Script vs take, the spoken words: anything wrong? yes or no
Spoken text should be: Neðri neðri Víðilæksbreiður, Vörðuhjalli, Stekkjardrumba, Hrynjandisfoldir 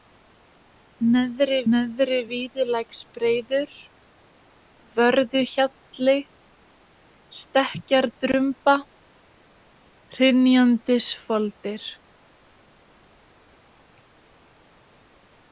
no